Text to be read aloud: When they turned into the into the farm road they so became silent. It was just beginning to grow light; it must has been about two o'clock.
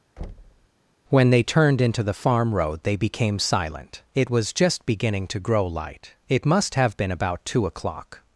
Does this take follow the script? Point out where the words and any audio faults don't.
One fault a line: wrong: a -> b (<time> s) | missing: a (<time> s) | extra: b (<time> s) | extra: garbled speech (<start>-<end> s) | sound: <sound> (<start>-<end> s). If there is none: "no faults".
sound: thud (0.2-0.7 s)
missing: into the (2.1 s)
missing: so (3.0 s)
wrong: has -> have (6.7 s)